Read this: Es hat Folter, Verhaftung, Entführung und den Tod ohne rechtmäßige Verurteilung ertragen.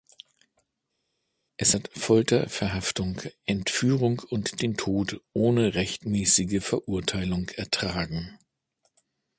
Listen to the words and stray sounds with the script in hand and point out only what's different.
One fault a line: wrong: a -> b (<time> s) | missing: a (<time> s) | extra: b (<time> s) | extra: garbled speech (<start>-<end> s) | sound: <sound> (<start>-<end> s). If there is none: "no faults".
no faults